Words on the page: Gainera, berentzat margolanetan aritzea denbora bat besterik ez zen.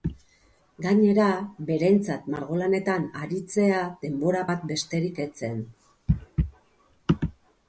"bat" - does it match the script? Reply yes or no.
yes